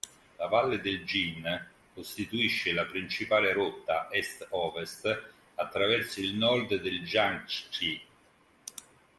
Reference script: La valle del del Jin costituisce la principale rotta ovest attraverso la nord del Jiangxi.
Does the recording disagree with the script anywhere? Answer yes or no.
yes